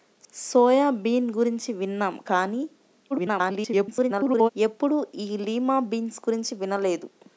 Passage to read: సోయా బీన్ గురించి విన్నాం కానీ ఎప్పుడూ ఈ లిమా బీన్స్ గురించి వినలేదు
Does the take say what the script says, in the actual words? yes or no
no